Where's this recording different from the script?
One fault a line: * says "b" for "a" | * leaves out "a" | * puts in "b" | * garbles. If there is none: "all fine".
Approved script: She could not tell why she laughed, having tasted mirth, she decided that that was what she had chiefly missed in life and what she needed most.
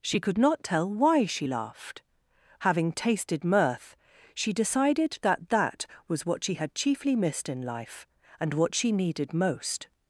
all fine